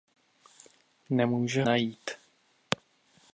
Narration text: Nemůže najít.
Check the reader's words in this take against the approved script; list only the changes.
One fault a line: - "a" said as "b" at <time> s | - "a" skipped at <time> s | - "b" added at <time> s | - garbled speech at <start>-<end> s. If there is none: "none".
none